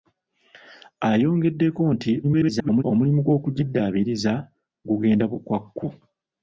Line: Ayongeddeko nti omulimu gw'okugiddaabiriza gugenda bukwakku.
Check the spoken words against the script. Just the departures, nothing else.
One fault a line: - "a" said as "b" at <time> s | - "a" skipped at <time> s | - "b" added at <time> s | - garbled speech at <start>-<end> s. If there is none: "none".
- garbled speech at 2.2-2.8 s